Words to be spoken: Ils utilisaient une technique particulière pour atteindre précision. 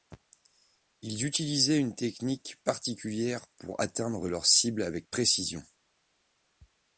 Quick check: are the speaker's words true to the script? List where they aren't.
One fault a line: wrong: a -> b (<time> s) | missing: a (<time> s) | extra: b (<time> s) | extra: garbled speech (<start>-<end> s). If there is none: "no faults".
extra: leur cible avec (4.3 s)